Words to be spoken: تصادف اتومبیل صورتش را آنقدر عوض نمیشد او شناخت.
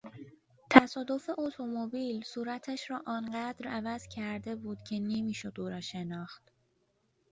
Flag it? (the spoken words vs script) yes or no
yes